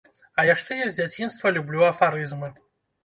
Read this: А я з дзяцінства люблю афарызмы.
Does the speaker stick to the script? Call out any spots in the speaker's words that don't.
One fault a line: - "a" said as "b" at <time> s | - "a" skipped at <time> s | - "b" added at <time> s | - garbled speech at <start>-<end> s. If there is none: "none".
- "яшчэ" added at 0.5 s